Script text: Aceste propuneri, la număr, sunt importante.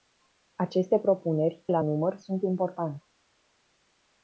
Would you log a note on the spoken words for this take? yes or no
no